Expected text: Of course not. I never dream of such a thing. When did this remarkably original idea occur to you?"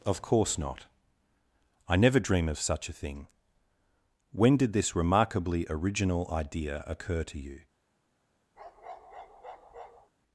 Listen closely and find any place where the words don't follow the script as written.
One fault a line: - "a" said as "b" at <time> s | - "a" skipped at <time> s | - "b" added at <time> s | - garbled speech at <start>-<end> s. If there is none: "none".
none